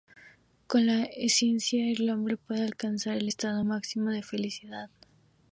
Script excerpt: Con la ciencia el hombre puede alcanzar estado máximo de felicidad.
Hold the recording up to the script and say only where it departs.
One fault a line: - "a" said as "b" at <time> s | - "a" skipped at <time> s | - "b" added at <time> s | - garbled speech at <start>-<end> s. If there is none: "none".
- "el" added at 3.2 s